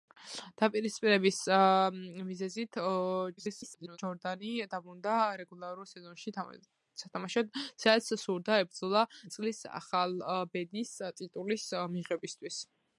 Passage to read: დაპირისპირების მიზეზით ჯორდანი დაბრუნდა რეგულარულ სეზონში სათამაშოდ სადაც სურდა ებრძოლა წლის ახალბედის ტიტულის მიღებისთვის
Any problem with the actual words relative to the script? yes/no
yes